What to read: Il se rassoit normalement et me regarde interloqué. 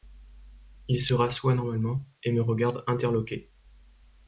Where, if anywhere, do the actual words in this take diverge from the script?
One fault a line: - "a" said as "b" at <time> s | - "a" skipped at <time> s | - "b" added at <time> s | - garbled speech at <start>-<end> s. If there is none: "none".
none